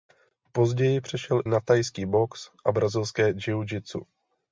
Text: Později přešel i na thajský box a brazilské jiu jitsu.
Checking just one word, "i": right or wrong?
wrong